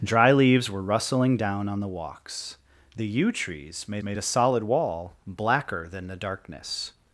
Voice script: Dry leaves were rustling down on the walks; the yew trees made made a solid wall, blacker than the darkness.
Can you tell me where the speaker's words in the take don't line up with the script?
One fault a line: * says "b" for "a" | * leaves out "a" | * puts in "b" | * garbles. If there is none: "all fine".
all fine